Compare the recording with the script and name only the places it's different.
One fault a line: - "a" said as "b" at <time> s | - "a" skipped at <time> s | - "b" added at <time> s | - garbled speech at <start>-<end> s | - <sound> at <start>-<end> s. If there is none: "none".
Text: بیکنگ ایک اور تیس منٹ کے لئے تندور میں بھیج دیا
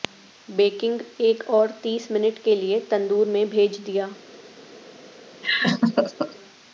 - laugh at 5.4-6.4 s